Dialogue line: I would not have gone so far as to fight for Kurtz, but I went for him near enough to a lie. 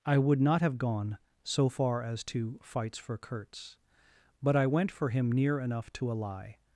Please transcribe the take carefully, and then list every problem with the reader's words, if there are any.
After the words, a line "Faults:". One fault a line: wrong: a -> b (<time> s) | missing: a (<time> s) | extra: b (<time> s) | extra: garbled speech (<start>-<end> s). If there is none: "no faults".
I would not have gone so far as to fights for Kurtz, but I went for him near enough to a lie.
Faults:
wrong: fight -> fights (2.6 s)